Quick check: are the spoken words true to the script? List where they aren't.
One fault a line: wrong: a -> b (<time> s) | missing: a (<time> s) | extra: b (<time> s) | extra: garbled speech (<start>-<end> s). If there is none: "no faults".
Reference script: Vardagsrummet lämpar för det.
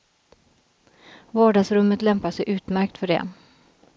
extra: sig utmärkt (2.3 s)